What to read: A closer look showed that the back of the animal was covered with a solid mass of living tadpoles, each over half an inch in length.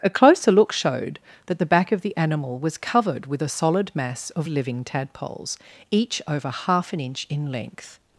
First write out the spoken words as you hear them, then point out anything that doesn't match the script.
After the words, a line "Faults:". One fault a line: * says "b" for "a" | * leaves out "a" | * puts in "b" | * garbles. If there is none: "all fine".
A closer look showed that the back of the animal was covered with a solid mass of living tadpoles, each over half an inch in length.
Faults:
all fine